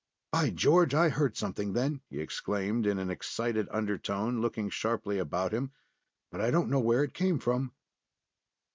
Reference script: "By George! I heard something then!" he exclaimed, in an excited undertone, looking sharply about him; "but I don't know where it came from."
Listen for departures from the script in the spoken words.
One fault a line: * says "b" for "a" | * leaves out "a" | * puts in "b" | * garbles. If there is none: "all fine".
all fine